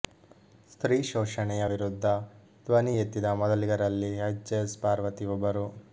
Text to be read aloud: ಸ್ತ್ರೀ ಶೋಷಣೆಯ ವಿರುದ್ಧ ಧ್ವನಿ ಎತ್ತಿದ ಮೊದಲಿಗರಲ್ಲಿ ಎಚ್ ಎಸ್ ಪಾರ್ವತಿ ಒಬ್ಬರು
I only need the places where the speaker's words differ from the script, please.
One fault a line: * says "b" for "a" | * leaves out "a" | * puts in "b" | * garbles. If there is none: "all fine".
all fine